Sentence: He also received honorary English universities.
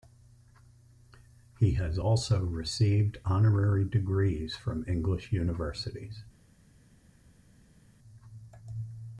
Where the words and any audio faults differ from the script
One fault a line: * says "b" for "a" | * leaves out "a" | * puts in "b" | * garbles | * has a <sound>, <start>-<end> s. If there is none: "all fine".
* puts in "has"
* puts in "degrees from"